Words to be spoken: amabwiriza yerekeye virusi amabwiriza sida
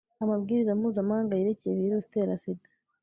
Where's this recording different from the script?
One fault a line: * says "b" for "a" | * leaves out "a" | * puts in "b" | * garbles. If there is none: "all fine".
* puts in "mpuzamahanga"
* says "itera" for "amabwiriza"